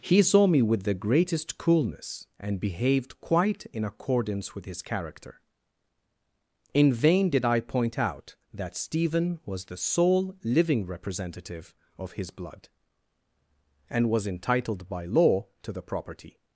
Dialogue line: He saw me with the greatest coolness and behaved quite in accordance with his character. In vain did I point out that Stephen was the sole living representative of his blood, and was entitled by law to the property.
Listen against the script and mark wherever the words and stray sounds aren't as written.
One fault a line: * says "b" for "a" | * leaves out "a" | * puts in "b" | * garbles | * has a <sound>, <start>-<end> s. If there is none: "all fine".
all fine